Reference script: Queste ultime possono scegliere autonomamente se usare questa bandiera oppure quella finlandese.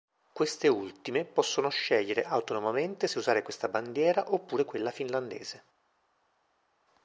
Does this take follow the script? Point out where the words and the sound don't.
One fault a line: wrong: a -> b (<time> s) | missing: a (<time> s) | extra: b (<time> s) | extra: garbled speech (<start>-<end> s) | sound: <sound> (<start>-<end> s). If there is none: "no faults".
no faults